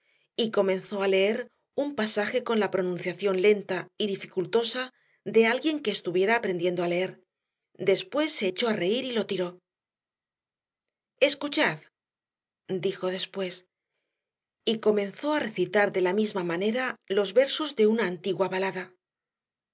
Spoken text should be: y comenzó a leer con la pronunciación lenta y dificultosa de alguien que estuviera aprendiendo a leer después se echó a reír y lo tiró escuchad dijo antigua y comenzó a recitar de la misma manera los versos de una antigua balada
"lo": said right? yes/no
yes